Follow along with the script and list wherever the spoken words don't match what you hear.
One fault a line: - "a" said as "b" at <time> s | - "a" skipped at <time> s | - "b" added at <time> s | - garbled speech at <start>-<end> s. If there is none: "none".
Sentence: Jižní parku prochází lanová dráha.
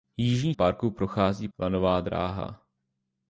none